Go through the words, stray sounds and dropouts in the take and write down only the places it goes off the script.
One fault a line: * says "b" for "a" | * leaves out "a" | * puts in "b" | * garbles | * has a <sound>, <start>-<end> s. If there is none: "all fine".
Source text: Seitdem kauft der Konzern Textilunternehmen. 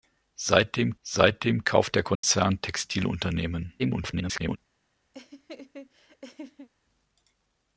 * puts in "seitdem"
* has a dropout, 2.1-2.2 s
* garbles
* has a laugh, 5.1-6.7 s